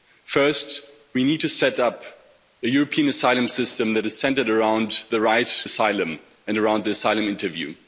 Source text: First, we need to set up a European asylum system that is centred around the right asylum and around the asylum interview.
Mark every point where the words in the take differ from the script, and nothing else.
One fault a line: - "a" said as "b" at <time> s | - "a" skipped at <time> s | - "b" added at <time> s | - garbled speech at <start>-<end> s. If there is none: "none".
none